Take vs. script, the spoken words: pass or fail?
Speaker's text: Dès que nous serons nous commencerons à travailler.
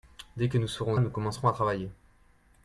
pass